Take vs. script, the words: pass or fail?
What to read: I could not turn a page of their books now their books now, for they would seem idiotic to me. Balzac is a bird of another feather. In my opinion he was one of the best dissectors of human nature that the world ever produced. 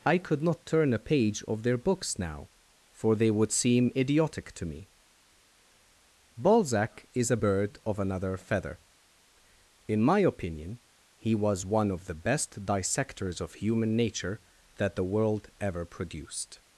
fail